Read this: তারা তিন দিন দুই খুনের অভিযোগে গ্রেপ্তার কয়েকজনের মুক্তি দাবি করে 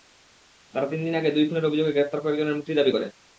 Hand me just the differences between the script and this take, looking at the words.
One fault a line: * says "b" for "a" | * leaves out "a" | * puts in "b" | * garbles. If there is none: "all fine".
* puts in "আগে"